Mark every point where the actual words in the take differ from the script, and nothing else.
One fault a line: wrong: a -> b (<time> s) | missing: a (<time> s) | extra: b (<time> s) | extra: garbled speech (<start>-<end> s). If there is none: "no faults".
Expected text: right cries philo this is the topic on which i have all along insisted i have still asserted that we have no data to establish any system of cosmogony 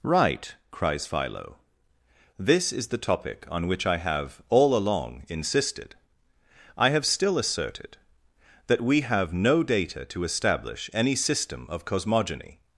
no faults